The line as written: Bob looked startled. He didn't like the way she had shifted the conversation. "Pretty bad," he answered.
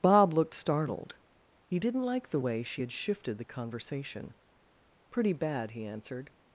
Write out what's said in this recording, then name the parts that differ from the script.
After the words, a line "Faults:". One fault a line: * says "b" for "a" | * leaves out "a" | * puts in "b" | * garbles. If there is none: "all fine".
Bob looked startled. He didn't like the way she had shifted the conversation. "Pretty bad," he answered.
Faults:
all fine